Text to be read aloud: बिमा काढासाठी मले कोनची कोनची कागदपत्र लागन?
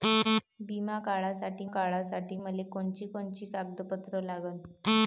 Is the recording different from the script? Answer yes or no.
yes